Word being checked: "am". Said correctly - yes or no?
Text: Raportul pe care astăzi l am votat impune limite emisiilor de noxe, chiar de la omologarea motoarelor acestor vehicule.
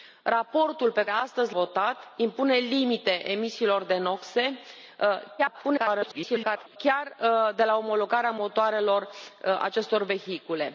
no